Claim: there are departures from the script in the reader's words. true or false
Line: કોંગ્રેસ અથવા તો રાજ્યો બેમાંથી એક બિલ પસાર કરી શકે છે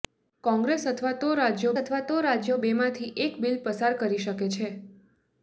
true